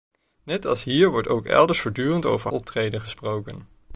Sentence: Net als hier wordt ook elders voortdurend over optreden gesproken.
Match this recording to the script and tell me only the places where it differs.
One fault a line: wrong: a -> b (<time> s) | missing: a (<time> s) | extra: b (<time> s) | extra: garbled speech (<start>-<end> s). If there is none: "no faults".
no faults